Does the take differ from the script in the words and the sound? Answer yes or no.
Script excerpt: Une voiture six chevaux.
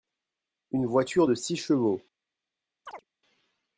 yes